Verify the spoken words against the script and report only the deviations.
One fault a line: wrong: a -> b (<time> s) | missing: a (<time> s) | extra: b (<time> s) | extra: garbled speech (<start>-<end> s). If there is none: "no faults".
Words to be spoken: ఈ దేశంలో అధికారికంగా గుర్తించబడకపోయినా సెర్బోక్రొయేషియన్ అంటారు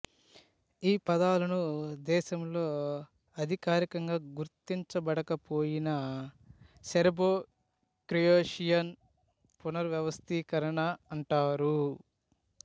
extra: పదాలను (1.1 s)
extra: పునర్వ్యవస్థీకరణ (9.6 s)